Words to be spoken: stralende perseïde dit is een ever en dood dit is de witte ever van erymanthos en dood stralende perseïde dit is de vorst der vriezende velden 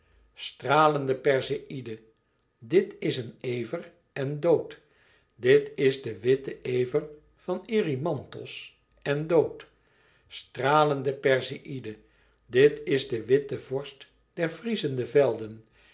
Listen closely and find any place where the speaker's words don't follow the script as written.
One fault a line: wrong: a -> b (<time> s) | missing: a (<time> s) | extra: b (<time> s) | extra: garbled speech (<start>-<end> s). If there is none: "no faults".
extra: witte (13.2 s)